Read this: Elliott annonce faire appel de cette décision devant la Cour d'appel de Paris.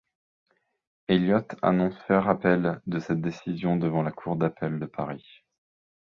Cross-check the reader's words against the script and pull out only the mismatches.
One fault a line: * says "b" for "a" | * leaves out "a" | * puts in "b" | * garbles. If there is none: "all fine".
all fine